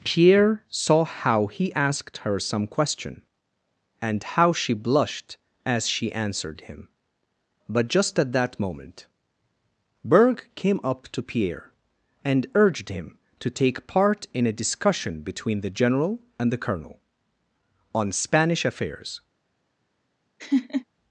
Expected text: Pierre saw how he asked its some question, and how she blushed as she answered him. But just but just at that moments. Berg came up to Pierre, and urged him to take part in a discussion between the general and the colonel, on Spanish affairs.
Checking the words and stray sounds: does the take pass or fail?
fail